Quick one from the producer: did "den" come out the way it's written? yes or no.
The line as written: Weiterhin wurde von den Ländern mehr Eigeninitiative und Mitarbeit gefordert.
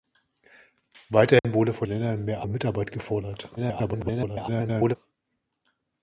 no